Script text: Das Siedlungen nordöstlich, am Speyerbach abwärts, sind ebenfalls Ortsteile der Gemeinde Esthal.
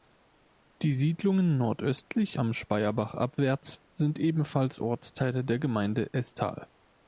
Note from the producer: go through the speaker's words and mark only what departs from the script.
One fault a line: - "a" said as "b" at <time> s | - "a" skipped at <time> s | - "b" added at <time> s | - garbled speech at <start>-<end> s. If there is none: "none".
- "Das" said as "Die" at 0.8 s